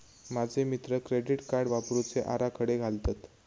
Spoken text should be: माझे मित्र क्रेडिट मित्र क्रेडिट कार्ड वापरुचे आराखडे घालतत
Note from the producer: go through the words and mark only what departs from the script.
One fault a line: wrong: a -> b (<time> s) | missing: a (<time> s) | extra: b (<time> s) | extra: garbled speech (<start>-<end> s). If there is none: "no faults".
missing: मित्र क्रेडिट (1.4 s)